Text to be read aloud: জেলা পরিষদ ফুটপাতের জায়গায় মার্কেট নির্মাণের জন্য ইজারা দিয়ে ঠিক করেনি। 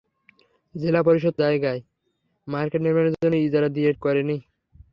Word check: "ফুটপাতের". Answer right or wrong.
wrong